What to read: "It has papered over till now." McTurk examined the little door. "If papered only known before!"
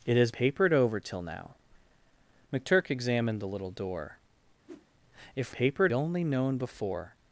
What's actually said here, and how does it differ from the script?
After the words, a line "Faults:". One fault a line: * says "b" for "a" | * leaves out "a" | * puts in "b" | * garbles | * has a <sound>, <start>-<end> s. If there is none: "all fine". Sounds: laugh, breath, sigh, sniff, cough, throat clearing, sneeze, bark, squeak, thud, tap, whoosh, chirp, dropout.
"It has papered over till now." McTurk examined the little door. "If papered only known before!"
Faults:
* has a whoosh, 4.7-4.9 s